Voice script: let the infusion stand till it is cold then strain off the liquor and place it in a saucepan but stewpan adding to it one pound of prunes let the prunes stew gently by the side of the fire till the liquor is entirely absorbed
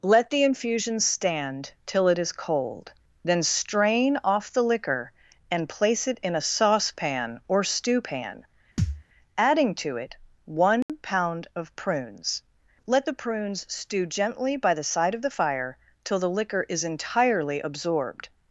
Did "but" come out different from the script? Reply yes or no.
yes